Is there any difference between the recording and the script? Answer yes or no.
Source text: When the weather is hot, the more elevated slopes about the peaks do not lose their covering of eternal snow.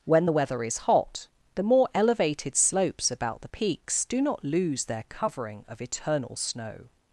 no